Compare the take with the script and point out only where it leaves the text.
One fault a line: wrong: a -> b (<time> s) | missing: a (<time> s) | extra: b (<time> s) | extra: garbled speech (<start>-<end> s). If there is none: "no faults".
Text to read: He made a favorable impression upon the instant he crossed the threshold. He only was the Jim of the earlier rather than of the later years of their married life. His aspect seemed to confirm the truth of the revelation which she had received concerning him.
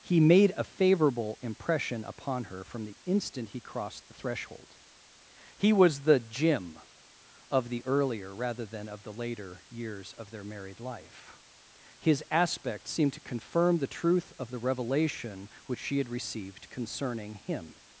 extra: her from (2.5 s)
missing: only (5.7 s)